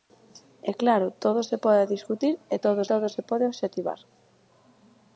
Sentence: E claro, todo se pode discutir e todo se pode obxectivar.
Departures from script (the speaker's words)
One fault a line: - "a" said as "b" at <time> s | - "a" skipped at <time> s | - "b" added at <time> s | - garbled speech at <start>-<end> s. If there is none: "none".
- "todo" added at 2.9 s